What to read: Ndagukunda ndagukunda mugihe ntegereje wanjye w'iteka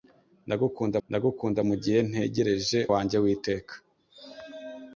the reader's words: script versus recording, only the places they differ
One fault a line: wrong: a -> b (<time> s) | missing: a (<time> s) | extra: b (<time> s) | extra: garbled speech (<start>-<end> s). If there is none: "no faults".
no faults